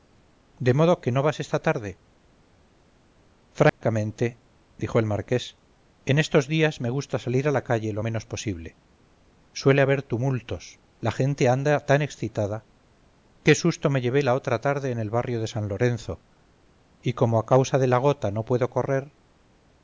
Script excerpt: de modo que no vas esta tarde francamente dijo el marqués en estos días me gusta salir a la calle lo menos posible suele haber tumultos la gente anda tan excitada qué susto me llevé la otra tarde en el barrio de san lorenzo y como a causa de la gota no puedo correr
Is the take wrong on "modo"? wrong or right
right